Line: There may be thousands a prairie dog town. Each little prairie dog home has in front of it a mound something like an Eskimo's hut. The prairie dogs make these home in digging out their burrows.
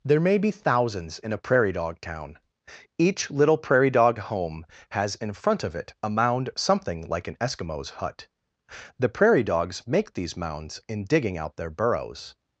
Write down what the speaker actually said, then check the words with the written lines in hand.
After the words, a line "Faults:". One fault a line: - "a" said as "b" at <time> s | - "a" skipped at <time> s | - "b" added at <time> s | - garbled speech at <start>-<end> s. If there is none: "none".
There may be thousands in a prairie dog town. Each little prairie dog home has in front of it a mound something like an Eskimo's hut. The prairie dogs make these mounds in digging out their burrows.
Faults:
- "in" added at 1.2 s
- "home" said as "mounds" at 10.3 s